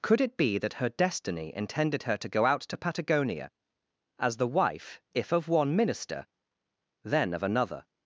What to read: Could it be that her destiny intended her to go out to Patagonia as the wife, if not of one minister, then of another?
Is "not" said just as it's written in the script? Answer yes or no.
no